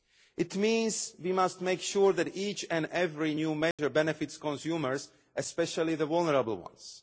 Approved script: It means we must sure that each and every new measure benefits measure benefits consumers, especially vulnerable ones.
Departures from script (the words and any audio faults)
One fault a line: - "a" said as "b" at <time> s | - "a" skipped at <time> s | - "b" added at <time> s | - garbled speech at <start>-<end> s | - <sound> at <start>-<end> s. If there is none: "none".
- "make" added at 1.6 s
- dropout at 3.7-3.8 s
- "measure benefits" skipped at 4.4 s
- "the" added at 6.0 s